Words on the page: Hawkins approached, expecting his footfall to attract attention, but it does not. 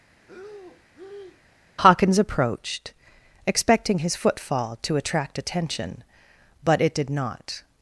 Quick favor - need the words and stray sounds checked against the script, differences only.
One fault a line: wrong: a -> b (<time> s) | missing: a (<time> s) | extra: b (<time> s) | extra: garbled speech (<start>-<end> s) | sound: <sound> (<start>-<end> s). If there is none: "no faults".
sound: breath (0.2-1.4 s)
wrong: does -> did (6.9 s)